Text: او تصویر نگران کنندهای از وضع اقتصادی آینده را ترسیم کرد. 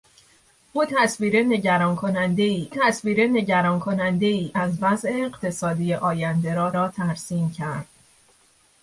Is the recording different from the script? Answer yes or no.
yes